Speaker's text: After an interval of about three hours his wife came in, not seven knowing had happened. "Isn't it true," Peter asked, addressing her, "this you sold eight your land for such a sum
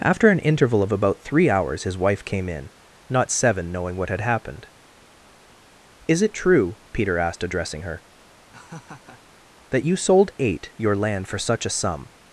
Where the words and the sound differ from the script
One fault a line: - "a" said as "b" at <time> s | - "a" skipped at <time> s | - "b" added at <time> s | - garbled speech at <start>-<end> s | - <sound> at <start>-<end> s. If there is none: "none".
- "what" added at 4.0 s
- "Isn't" said as "Is" at 6.1 s
- laugh at 8.5-9.2 s
- "this" said as "that" at 9.7 s